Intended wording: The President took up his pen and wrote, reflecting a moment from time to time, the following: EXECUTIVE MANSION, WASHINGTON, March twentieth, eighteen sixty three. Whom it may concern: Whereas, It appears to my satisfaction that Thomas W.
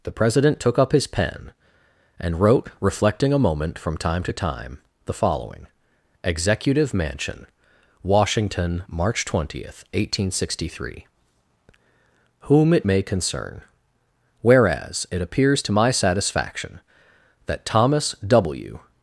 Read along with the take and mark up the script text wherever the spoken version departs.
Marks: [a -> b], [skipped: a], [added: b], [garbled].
The President took up his pen and wrote, reflecting a moment from time to time, the following: EXECUTIVE MANSION, WASHINGTON, March twentieth, eighteen sixty three. Whom it may concern: Whereas, It appears to my satisfaction that Thomas W.